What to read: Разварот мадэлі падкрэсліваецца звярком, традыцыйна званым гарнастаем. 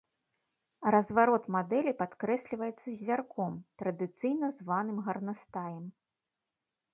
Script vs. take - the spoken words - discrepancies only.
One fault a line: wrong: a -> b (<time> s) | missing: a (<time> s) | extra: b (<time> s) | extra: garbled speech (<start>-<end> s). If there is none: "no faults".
no faults